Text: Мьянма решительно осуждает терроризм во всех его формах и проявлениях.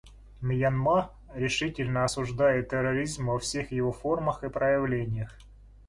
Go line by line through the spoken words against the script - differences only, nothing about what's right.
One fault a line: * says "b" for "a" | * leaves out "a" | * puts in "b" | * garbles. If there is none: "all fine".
all fine